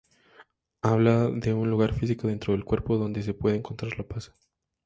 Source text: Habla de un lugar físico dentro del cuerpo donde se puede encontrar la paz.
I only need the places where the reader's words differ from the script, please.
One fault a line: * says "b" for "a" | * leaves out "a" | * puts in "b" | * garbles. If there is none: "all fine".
all fine